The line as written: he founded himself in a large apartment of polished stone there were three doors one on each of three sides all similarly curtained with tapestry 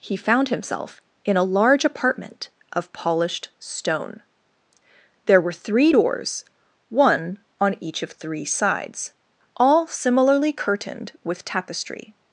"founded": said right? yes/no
no